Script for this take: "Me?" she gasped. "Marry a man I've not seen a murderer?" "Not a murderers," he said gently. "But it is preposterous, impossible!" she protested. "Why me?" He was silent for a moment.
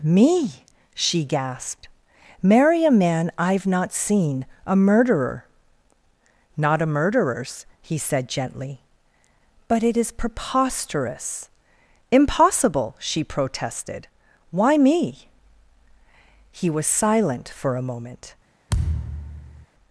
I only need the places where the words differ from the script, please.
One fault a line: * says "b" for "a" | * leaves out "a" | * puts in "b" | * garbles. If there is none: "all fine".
all fine